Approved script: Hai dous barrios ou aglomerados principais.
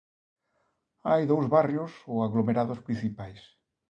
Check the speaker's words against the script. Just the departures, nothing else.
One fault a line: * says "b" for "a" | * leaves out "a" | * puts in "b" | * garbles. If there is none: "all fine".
all fine